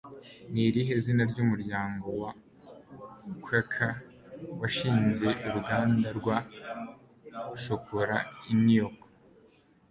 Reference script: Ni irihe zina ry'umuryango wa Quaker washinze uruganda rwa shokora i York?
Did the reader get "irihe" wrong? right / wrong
right